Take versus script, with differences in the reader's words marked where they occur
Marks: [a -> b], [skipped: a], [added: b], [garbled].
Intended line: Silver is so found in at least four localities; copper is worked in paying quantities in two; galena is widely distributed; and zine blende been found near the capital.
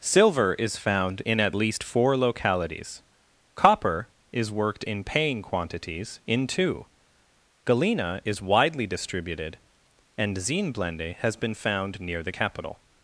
Silver is [skipped: so] found in at least four localities; copper is worked in paying quantities in two; galena is widely distributed; and zine blende [added: has] been found near the capital.